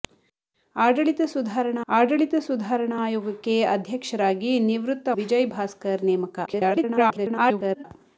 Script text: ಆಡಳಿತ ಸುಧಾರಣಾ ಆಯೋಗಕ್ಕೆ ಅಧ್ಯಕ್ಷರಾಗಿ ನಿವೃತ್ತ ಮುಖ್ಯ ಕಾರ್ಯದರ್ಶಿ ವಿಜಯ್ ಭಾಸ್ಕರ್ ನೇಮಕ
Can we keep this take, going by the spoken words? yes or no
no